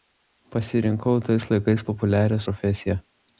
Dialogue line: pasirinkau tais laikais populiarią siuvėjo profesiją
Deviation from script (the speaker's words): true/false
true